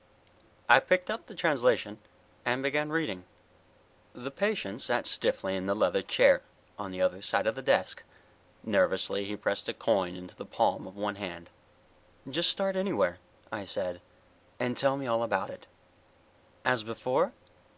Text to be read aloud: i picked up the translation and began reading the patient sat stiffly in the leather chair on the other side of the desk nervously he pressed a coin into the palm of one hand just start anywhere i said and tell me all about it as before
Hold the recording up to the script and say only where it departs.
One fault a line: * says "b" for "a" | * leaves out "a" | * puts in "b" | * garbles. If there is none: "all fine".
all fine